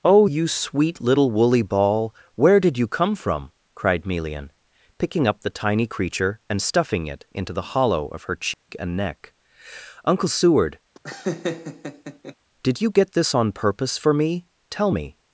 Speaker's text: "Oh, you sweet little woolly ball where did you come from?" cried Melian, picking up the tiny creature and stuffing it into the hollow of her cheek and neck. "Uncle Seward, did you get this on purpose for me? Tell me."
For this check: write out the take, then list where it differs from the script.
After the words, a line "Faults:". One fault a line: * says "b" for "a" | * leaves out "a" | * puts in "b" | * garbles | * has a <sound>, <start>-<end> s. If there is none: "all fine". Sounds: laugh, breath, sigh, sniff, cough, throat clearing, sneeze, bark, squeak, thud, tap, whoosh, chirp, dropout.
"Oh, you sweet little woolly ball where did you come from?" cried Melian, picking up the tiny creature and stuffing it into the hollow of her cheek and neck. "Uncle Seward, did you get this on purpose for me? Tell me."
Faults:
* has a dropout, 8.5-8.7 s
* has a laugh, 10.9-12.3 s